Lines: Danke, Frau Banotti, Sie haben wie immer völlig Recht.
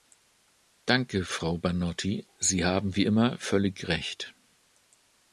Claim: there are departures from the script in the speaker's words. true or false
false